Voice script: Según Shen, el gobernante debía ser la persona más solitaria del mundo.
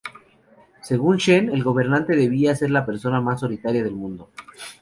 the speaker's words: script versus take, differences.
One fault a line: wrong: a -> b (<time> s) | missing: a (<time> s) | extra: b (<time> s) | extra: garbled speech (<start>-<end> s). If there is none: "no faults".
no faults